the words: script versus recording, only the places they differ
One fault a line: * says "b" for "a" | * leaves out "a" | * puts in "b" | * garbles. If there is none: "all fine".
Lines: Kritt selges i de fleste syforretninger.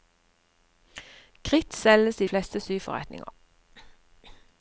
* leaves out "de"